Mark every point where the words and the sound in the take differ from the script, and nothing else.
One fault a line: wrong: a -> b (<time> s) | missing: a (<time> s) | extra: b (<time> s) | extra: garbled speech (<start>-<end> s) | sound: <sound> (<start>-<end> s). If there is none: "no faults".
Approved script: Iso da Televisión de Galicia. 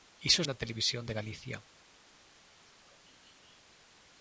no faults